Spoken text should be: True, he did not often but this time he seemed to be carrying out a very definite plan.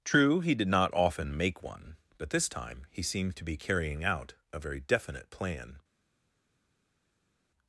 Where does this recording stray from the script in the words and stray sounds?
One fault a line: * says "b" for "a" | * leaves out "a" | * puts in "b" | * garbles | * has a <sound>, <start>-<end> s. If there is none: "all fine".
* puts in "make one"